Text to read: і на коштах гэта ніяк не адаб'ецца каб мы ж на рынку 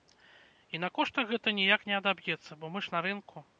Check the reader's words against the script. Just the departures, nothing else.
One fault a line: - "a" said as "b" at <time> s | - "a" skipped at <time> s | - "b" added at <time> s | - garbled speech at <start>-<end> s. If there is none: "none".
- "каб" said as "бо" at 2.6 s